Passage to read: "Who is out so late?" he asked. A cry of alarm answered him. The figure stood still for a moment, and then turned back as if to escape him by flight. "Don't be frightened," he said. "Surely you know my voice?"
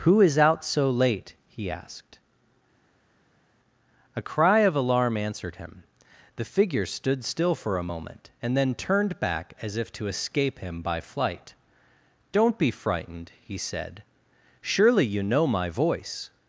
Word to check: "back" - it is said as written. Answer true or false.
true